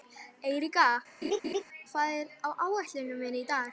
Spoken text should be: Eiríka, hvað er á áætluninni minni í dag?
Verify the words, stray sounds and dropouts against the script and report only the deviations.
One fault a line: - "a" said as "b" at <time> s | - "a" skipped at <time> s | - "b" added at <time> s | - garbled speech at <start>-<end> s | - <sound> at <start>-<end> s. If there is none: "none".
- laugh at 1.2-1.6 s